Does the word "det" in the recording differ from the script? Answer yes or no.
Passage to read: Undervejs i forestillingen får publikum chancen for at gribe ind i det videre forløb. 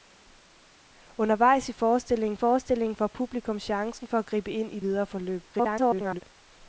yes